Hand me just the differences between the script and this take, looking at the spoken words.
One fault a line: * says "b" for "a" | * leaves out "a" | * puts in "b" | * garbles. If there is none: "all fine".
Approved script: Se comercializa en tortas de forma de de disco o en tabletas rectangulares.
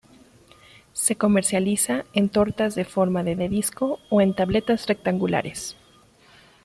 all fine